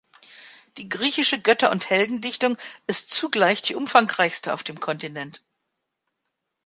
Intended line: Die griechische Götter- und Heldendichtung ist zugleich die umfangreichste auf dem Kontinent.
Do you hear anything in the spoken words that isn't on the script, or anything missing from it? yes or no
no